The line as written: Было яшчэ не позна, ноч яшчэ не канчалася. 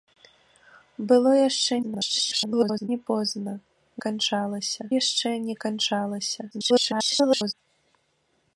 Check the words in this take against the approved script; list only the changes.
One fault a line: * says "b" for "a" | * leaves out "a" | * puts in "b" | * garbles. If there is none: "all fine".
* garbles
* says "канчалася" for "ноч"
* garbles